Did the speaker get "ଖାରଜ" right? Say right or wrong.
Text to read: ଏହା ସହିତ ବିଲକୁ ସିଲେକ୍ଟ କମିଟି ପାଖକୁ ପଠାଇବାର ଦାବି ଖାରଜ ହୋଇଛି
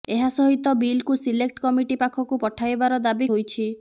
wrong